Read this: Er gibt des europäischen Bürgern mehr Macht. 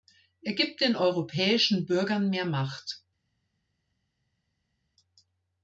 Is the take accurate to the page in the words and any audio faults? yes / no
no